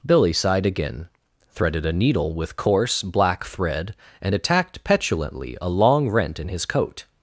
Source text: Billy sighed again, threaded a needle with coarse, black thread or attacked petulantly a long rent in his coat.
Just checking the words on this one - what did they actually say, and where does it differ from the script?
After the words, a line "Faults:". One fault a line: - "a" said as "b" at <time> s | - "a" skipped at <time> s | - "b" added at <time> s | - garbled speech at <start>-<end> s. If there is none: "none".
Billy sighed again, threaded a needle with coarse, black thread and attacked petulantly a long rent in his coat.
Faults:
- "or" said as "and" at 4.2 s